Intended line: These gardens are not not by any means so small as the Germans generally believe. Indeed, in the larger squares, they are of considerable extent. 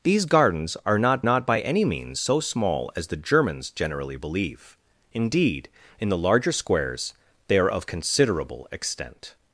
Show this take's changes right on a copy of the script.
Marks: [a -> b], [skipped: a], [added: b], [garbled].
These gardens are not not by any means so small as the Germans generally believe. Indeed, in the larger squares, they are of considerable extent.